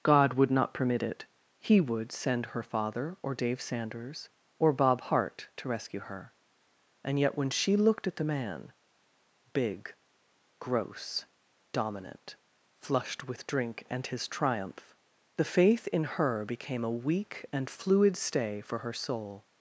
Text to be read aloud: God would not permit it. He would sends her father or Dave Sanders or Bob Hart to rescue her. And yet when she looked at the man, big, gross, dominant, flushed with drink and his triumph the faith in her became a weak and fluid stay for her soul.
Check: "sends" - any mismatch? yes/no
yes